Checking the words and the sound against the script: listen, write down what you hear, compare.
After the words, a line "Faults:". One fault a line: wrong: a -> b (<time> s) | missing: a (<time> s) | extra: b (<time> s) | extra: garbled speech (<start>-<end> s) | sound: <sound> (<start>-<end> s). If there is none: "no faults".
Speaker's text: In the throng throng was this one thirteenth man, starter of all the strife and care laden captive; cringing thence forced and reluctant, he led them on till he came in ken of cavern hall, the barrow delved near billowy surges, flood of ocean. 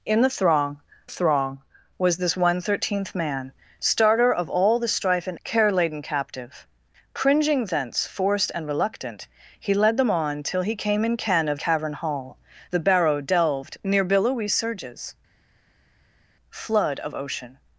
In the throng throng was this one thirteenth man, starter of all the strife and care laden captive; cringing thence forced and reluctant, he led them on till he came in ken of cavern hall, the barrow delved near billowy surges, flood of ocean.
Faults:
no faults